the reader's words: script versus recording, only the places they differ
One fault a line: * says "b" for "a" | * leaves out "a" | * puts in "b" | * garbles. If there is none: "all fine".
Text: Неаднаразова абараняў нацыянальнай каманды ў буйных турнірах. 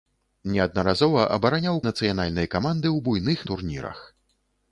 all fine